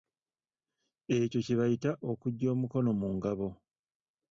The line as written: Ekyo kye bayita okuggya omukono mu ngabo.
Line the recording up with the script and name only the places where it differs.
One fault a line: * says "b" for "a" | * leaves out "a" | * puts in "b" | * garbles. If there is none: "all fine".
all fine